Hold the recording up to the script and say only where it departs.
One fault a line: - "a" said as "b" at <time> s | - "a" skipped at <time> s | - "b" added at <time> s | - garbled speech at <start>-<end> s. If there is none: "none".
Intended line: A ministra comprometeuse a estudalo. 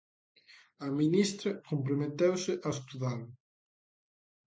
none